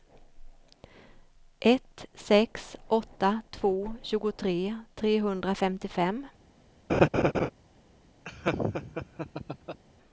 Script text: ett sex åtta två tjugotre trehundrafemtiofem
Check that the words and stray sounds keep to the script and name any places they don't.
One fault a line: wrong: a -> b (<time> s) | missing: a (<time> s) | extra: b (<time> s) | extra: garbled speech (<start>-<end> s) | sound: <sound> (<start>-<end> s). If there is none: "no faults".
sound: laugh (6.9-7.5 s)
sound: laugh (8.3-9.8 s)